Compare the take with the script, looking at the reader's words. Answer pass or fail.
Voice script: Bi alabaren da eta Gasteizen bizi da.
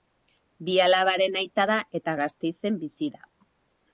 fail